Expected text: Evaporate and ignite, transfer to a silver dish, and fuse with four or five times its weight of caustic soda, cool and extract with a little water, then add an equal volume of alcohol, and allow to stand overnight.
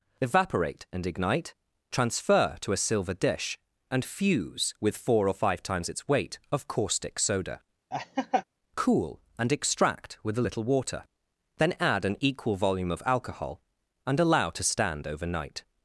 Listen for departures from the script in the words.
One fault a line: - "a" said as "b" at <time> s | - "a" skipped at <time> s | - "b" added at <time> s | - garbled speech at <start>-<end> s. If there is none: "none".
none